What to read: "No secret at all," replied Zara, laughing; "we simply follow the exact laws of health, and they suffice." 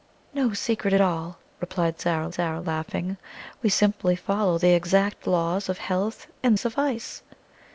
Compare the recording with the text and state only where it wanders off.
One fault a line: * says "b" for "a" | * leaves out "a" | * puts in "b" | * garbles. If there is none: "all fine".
* puts in "Zara"
* leaves out "they"